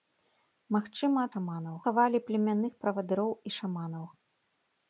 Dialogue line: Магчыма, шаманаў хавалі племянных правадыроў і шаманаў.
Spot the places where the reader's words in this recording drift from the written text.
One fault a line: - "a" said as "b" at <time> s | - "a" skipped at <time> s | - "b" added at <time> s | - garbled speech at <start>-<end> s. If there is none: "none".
none